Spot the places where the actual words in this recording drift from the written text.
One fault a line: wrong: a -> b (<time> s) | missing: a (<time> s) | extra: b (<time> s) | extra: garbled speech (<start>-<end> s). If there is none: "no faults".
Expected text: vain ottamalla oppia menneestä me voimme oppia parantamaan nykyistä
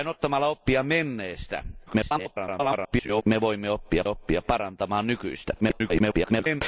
extra: garbled speech (1.9-3.2 s)
extra: oppia (4.1 s)
extra: garbled speech (5.6-6.6 s)